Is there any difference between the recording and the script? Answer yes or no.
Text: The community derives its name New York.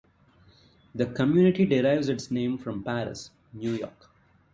yes